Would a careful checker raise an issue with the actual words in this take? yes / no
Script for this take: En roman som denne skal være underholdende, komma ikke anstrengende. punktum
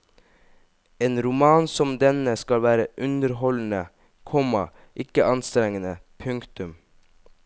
no